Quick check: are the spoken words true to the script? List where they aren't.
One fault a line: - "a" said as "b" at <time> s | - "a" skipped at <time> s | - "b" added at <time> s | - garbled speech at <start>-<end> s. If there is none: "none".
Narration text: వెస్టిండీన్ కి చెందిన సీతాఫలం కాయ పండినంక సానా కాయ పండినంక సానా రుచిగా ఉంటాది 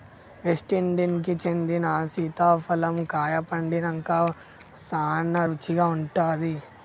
- "కాయ పండినంక సానా" skipped at 5.4 s